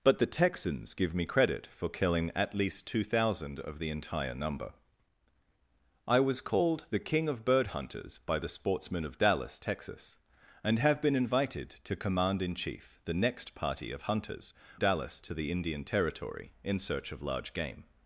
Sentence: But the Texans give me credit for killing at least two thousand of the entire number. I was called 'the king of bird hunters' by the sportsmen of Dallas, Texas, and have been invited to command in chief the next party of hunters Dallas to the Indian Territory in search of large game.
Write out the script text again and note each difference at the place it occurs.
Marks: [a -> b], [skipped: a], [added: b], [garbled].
But the Texans give me credit for killing at least two thousand of the entire number. I was called 'the king of bird hunters' by the sportsmen of Dallas, Texas, and have been invited to command in chief the next party of hunters Dallas to the Indian Territory in search of large game.